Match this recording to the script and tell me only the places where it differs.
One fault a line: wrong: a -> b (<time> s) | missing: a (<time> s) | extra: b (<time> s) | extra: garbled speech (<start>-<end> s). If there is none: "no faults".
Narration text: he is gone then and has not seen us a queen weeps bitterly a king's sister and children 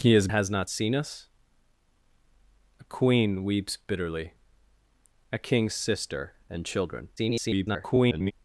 missing: gone then and (0.3 s)
extra: garbled speech (7.2-8.3 s)